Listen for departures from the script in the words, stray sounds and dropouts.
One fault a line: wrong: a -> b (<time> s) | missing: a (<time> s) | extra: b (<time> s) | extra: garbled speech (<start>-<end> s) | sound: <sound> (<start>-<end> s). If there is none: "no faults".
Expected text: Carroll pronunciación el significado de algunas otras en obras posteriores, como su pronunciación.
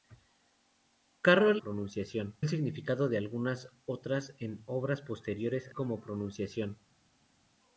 no faults